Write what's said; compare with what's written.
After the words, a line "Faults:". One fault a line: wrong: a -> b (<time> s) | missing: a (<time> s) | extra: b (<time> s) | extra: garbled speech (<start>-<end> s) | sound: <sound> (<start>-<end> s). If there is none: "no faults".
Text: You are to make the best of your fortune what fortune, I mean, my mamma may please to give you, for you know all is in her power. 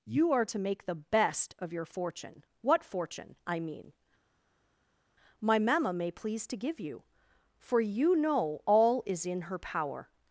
You are to make the best of your fortune what fortune, I mean, my mamma may please to give you, for you know all is in her power.
Faults:
no faults